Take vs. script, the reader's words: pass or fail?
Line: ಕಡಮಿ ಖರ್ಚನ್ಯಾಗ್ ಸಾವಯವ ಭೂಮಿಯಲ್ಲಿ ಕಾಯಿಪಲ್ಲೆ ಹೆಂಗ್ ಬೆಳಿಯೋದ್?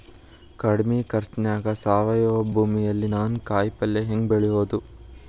fail